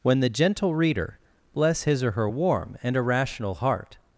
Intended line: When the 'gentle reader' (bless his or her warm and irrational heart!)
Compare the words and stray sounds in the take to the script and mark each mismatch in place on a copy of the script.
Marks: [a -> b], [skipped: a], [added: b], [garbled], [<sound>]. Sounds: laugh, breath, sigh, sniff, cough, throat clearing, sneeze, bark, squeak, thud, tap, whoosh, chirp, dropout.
When the 'gentle reader' (bless his or her warm and irrational heart!)